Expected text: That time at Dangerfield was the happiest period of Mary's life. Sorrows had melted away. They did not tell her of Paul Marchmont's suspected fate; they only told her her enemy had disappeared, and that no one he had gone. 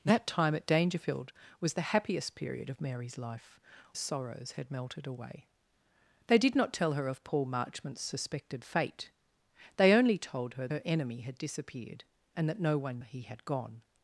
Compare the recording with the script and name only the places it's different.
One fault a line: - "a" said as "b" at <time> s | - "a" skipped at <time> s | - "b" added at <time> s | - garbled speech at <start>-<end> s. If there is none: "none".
none